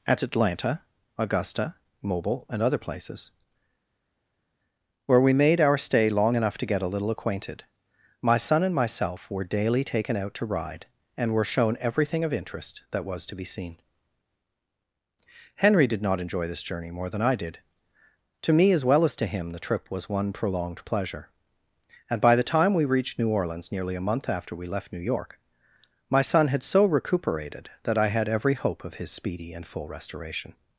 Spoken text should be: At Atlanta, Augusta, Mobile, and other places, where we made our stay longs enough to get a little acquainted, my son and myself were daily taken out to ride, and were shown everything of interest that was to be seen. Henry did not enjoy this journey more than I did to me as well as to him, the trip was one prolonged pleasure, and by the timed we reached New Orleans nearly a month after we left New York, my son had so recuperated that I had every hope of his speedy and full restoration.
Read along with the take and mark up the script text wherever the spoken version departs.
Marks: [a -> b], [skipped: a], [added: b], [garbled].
At Atlanta, Augusta, Mobile, and other places, where we made our stay [longs -> long] enough to get a little acquainted, my son and myself were daily taken out to ride, and were shown everything of interest that was to be seen. Henry did not enjoy this journey more than I did to me as well as to him, the trip was one prolonged pleasure, and by the [timed -> time] we reached New Orleans nearly a month after we left New York, my son had so recuperated that I had every hope of his speedy and full restoration.